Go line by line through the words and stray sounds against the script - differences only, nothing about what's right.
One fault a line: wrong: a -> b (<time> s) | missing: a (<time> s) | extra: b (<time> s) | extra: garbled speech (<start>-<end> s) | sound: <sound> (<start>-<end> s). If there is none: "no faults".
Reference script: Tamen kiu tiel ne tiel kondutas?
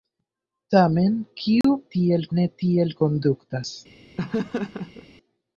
sound: dropout (1.6-1.6 s)
sound: laugh (4.2-5.1 s)